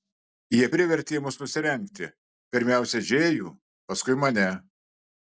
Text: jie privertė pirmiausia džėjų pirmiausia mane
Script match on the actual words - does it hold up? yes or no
no